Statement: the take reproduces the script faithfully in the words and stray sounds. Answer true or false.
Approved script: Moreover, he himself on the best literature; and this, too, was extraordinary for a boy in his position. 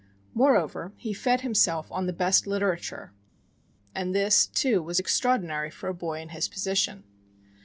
false